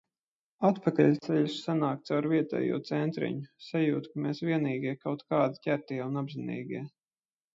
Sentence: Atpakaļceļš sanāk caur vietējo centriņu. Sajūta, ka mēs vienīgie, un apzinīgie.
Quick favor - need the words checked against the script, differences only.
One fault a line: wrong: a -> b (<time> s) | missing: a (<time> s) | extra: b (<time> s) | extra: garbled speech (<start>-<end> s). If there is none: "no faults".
extra: kaut kādi ķertie (5.0 s)